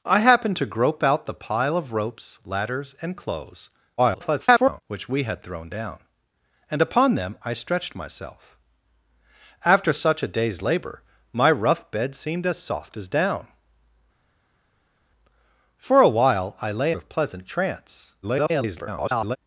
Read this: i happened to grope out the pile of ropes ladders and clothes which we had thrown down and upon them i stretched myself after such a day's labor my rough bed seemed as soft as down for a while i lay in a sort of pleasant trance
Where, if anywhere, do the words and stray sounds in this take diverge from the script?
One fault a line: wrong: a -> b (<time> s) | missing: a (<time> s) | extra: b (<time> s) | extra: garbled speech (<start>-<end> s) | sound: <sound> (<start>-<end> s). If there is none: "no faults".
extra: garbled speech (4.0-4.8 s)
missing: in a sort (16.9 s)
extra: garbled speech (18.2-19.4 s)